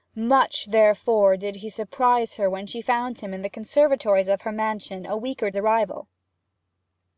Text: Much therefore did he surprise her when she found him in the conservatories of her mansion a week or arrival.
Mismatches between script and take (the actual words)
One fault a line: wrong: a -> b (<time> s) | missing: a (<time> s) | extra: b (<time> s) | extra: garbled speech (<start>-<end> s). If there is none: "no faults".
no faults